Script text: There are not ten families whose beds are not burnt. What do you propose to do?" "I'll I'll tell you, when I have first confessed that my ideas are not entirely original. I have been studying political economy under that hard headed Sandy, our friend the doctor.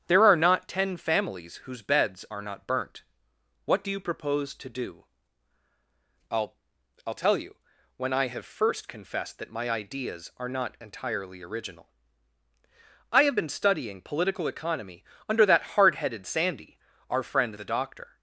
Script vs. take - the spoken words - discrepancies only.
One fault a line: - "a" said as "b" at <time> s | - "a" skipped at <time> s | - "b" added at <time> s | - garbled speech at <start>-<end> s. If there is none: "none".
none